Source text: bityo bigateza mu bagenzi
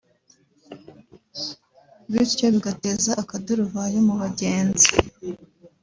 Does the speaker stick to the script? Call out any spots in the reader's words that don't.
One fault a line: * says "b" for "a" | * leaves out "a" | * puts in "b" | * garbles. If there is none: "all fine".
* puts in "akaduruvayo"